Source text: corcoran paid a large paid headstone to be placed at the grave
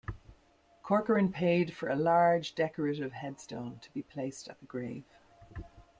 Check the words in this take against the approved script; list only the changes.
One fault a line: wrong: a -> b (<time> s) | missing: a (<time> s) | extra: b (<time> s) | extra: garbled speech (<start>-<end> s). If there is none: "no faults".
extra: for (1.8 s)
wrong: paid -> decorative (2.5 s)